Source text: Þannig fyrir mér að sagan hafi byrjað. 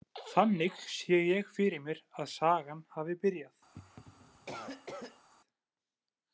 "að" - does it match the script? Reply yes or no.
yes